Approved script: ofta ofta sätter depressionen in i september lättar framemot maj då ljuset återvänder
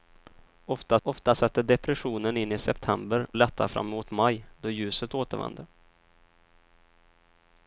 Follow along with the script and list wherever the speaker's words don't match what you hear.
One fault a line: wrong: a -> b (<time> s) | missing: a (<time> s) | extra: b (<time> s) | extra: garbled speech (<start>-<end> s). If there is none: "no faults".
no faults